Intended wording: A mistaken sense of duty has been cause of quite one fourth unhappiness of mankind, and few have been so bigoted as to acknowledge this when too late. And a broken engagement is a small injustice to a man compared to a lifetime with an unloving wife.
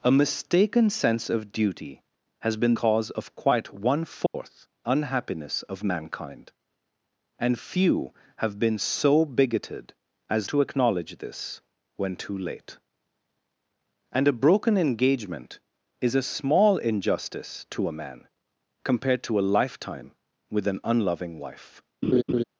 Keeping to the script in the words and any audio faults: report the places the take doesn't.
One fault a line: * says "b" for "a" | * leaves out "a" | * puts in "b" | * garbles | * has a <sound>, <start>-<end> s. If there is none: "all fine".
* has a dropout, 4.3-4.3 s
* has a laugh, 22.0-22.4 s